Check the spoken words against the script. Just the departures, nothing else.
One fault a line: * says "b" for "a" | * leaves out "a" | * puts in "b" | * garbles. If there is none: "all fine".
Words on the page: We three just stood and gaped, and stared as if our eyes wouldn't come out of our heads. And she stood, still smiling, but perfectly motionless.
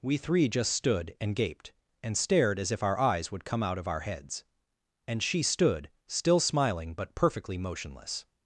* says "would" for "wouldn't"